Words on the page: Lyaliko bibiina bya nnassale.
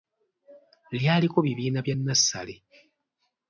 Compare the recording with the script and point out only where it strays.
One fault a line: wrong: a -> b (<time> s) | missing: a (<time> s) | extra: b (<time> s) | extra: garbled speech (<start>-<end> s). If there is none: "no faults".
no faults